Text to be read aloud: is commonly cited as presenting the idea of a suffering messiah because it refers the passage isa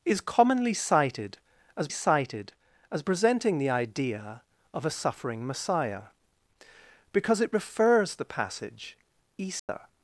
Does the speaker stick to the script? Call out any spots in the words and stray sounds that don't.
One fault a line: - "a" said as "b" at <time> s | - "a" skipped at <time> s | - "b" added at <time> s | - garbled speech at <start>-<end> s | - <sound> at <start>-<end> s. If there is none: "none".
- "cited as" added at 1.9 s
- dropout at 9.6-9.7 s